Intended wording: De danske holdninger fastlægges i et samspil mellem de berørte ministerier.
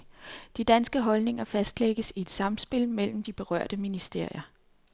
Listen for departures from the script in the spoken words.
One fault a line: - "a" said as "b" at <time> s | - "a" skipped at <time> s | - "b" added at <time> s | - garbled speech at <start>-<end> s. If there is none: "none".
none